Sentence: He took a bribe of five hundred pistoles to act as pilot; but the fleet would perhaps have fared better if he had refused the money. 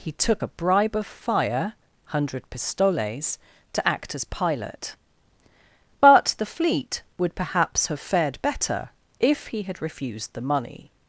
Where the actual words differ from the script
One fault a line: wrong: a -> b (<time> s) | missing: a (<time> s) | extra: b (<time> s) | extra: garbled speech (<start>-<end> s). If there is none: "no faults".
wrong: five -> fire (1.1 s)